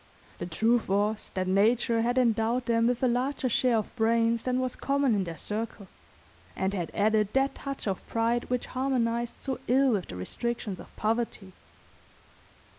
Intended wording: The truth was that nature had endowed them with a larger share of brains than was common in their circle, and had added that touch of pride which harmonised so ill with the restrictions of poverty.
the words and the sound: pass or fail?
pass